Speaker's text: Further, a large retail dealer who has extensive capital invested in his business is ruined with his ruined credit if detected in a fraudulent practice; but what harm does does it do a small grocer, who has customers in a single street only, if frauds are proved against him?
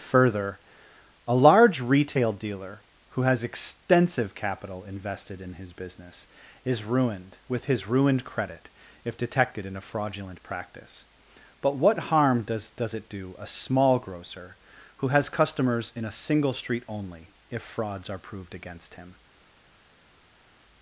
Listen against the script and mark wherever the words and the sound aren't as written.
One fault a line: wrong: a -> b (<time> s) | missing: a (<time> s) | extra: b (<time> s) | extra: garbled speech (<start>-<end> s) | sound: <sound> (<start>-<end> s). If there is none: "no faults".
no faults